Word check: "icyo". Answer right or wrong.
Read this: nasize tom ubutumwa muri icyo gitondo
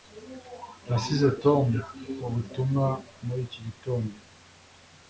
wrong